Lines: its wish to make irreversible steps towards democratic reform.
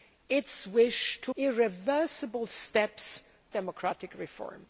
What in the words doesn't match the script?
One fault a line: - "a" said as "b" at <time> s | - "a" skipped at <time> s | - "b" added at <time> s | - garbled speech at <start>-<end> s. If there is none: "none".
- "make" skipped at 1.3 s
- "towards" skipped at 3.2 s